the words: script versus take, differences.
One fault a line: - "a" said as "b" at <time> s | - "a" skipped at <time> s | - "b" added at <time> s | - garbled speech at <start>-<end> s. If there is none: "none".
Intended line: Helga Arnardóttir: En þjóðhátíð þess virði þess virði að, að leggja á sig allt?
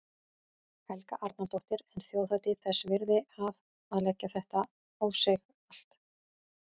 - "þess virði" skipped at 3.2 s
- "þetta" added at 4.4 s